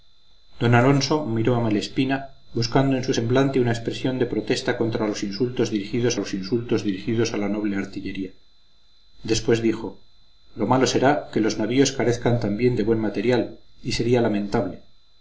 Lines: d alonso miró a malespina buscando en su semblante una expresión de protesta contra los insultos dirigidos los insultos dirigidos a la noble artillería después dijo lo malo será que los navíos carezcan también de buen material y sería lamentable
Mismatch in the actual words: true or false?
false